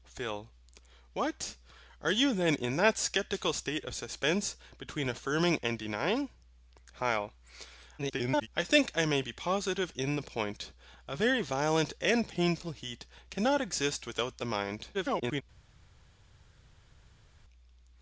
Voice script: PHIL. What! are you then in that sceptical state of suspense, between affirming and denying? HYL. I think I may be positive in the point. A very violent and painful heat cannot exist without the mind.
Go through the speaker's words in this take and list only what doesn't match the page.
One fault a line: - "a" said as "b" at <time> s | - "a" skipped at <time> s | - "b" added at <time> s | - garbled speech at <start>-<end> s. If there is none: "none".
- garbled speech at 8.0-8.5 s
- garbled speech at 14.9-15.4 s